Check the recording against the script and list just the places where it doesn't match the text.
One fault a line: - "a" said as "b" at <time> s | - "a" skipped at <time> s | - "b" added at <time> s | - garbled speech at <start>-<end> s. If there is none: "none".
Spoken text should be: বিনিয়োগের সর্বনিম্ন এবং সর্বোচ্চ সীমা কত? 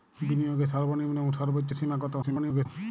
- garbled speech at 2.2-2.7 s